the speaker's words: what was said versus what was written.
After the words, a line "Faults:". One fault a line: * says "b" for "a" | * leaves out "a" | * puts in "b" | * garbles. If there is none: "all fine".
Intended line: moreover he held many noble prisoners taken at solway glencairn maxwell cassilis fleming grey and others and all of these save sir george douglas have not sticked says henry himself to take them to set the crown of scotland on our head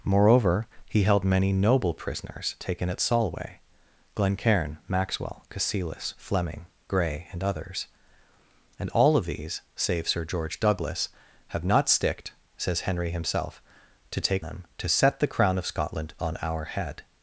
moreover he held many noble prisoners taken at solway glencairn maxwell cassilis fleming grey and others and all of these save sir george douglas have not sticked says henry himself to take them to set the crown of scotland on our head
Faults:
all fine